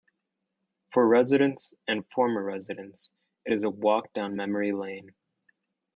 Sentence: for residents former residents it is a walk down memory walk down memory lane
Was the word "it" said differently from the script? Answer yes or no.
no